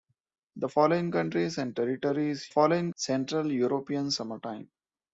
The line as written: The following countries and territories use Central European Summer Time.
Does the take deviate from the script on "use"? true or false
true